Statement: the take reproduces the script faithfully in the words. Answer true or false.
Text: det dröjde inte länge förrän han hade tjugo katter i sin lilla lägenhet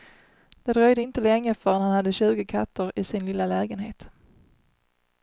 true